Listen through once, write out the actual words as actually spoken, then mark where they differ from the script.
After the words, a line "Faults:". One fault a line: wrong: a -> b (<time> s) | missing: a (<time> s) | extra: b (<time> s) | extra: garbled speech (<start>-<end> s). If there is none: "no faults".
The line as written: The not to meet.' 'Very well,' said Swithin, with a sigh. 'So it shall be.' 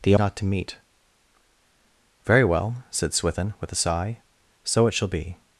The not to meet.' 'Very well,' said Swithin, with a sigh. 'So it shall be.'
Faults:
no faults